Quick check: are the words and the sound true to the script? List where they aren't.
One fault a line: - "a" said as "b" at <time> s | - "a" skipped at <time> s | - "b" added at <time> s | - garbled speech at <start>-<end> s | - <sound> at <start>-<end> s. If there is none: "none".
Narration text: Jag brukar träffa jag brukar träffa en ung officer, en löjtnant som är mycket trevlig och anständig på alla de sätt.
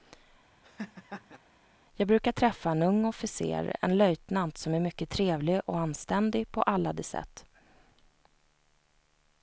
- laugh at 0.6-1.4 s
- "jag brukar träffa" skipped at 2.7 s